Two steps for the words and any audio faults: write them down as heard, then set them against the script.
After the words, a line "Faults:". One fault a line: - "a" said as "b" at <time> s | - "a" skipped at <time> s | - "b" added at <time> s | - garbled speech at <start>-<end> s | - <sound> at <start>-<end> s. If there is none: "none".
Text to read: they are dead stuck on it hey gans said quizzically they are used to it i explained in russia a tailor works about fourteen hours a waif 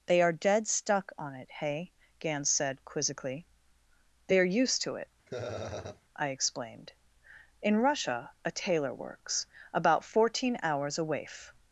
they are dead stuck on it hey gans said quizzically they are used to it i explained in russia a tailor works about fourteen hours a waif
Faults:
- laugh at 5.3-6.0 s